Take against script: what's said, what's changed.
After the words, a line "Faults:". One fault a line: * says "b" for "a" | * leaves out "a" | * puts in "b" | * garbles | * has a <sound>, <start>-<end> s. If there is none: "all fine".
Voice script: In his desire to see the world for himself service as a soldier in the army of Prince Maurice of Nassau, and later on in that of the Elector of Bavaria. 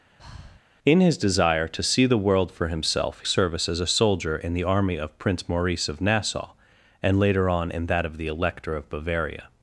In his desire to see the world for himself service as a soldier in the army of Prince Maurice of Nassau, and later on in that of the Elector of Bavaria.
Faults:
* has a breath, 0.2-0.6 s